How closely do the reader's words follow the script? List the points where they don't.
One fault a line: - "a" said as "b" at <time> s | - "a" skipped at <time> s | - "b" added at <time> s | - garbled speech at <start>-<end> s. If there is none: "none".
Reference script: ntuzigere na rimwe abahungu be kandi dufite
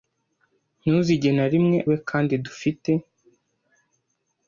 - "abahungu" skipped at 1.8 s